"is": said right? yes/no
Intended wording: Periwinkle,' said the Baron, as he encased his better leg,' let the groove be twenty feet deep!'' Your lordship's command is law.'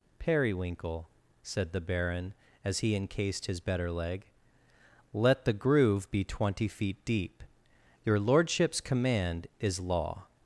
yes